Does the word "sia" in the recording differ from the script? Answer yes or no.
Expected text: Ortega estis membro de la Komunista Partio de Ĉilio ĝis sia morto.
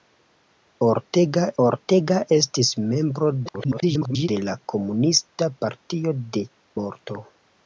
yes